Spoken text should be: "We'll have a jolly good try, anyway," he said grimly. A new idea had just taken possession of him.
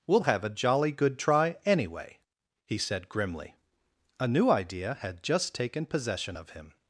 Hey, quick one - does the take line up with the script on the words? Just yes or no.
yes